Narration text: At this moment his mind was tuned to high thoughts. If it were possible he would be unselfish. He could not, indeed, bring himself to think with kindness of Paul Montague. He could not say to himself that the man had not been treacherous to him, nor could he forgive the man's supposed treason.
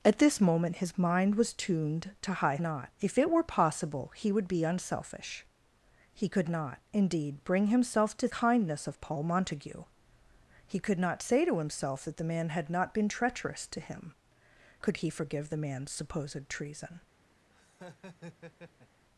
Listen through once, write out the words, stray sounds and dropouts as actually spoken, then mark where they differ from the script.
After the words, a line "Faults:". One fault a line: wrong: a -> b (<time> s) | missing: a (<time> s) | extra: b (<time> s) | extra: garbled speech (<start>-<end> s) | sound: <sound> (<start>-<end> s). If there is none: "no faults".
At this moment his mind was tuned to high not. If it were possible he would be unselfish. He could not, indeed, bring himself to kindness of Paul Montague. He could not say to himself that the man had not been treacherous to him, could he forgive the man's supposed treason.
Faults:
wrong: thoughts -> not (2.6 s)
missing: think with (8.3 s)
missing: nor (14.1 s)
sound: laugh (17.5-19.1 s)